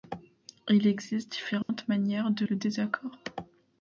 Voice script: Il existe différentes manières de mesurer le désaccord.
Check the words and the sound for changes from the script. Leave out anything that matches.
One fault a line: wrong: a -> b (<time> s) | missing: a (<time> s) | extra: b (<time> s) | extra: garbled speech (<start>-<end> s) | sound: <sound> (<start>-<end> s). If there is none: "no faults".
sound: dropout (1.6-1.7 s)
missing: mesurer (2.5 s)